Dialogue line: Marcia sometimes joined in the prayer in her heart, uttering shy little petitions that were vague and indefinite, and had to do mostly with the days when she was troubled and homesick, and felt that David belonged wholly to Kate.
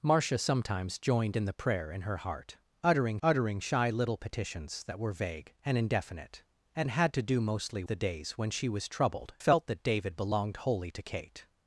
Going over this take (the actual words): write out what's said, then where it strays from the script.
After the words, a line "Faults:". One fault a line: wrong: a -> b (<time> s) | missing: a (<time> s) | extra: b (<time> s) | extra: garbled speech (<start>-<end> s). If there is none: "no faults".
Marcia sometimes joined in the prayer in her heart, uttering uttering shy little petitions that were vague and indefinite, and had to do mostly the days when she was troubled felt that David belonged wholly to Kate.
Faults:
extra: uttering (3.2 s)
missing: with (7.8 s)
missing: and homesick and (9.3 s)